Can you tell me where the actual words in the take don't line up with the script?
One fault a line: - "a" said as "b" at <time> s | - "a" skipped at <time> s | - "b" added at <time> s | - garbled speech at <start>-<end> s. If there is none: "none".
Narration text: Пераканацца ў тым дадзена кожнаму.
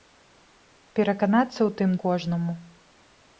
- "дадзена" skipped at 1.9 s